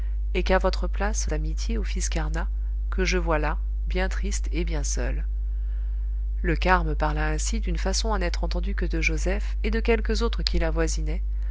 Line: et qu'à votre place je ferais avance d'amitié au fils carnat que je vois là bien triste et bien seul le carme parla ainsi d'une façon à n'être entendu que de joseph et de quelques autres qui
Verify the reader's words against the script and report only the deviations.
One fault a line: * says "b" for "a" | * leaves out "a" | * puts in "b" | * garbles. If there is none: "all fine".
* leaves out "je ferais avance"